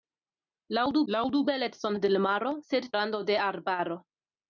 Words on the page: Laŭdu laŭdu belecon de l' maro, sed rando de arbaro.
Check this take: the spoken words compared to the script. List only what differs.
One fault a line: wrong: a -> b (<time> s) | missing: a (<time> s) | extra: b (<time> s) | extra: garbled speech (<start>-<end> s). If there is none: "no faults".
no faults